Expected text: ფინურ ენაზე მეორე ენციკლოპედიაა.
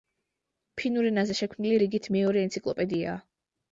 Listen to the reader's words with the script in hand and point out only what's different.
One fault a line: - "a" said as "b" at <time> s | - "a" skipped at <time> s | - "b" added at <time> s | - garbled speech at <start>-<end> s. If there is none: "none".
- "შექმნილი რიგით" added at 1.4 s